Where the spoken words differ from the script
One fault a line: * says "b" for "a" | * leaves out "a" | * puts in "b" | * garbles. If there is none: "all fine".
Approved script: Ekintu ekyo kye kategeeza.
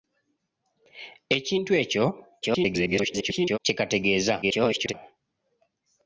* garbles
* garbles